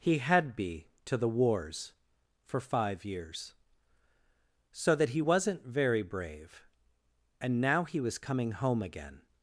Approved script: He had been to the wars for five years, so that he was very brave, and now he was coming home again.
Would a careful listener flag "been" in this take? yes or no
yes